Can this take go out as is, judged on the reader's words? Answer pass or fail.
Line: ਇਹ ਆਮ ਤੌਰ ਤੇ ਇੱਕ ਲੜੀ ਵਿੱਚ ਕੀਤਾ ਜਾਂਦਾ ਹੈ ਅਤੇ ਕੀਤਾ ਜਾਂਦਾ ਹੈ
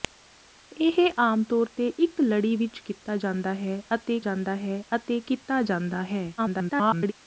fail